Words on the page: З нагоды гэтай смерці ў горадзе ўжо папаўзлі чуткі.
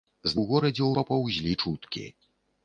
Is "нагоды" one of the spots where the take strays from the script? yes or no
yes